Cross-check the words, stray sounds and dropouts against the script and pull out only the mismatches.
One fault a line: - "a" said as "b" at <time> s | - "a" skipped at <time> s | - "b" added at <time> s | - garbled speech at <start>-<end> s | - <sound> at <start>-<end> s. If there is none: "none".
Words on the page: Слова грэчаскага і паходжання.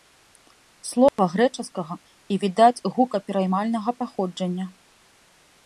- dropout at 1.1-1.2 s
- "відаць гукапераймальнага" added at 2.5 s